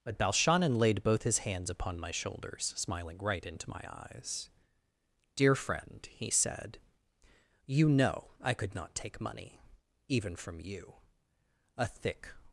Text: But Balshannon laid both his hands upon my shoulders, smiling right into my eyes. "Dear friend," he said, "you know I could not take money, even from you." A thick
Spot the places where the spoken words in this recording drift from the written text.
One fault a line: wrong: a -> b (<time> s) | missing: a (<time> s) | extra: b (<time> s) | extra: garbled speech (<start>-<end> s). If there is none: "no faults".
no faults